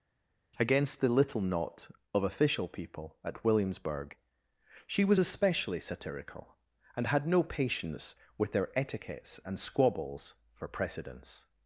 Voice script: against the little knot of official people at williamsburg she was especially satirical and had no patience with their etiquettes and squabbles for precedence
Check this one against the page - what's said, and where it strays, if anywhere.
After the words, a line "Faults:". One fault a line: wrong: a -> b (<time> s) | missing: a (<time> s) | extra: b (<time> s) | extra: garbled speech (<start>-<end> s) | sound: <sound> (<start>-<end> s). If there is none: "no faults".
against the little knot of official people at williamsburg she was especially satirical and had no patience with their etiquettes and squabbles for precedence
Faults:
no faults